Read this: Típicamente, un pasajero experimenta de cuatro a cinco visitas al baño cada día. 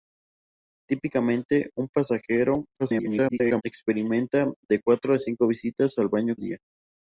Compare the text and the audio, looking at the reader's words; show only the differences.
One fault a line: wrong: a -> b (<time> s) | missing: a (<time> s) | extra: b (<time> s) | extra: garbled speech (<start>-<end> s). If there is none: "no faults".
extra: garbled speech (2.8-3.6 s)
missing: cada (6.4 s)